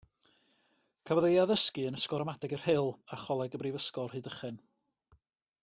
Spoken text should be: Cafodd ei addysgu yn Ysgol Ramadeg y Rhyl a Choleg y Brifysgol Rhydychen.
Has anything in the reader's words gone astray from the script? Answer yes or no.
no